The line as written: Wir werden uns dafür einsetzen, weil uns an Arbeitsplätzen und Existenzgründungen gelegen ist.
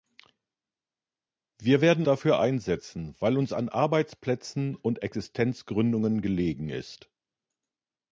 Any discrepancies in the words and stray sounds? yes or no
yes